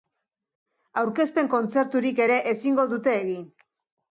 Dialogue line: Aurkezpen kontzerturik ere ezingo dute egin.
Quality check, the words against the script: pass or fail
pass